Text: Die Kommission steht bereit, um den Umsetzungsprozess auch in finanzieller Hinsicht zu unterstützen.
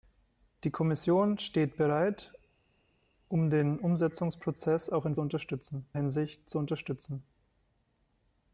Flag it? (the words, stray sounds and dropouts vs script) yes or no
yes